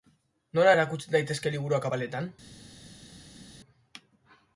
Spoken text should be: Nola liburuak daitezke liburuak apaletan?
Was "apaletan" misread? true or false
false